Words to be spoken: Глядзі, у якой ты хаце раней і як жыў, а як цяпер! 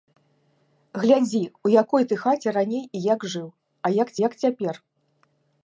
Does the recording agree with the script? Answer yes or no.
no